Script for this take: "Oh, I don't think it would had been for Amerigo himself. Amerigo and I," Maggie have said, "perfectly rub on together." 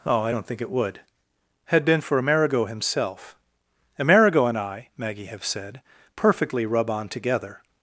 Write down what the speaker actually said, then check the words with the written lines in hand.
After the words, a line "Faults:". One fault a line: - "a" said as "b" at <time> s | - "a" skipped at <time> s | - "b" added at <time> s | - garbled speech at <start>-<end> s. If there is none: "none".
"Oh, I don't think it would had been for Amerigo himself. Amerigo and I," Maggie have said, "perfectly rub on together."
Faults:
none